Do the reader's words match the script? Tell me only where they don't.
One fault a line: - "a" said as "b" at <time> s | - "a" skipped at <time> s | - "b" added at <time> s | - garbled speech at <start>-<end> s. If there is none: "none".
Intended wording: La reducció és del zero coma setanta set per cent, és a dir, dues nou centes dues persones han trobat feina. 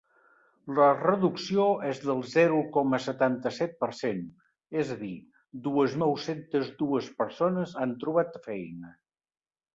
none